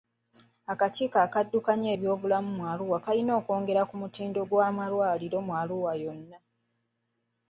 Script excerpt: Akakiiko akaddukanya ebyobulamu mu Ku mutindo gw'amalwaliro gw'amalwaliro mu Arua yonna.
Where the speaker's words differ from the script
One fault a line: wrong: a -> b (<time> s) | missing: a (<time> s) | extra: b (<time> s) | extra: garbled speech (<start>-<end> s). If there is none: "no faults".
extra: Arua kalina okwongera (2.7 s)
missing: gw'amalwaliro (5.4 s)